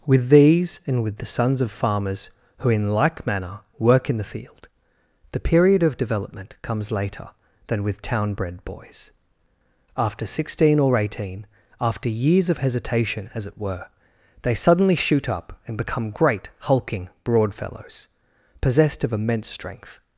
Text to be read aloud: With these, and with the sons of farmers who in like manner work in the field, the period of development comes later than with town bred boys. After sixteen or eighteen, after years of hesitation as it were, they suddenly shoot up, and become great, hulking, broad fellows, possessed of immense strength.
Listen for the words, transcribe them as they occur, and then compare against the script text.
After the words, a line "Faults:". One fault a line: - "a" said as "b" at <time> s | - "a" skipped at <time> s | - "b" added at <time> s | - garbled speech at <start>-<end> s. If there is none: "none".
With these, and with the sons of farmers who in like manner work in the field, the period of development comes later than with town bred boys. After sixteen or eighteen, after years of hesitation as it were, they suddenly shoot up, and become great, hulking, broad fellows, possessed of immense strength.
Faults:
none